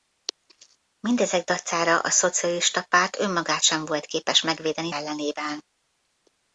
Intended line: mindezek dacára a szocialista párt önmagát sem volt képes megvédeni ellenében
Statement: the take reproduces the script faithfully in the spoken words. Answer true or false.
true